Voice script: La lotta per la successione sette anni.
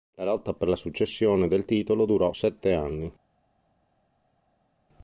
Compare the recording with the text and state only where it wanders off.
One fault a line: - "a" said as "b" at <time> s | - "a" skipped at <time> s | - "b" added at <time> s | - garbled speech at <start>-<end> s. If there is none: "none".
- "del titolo durò" added at 1.5 s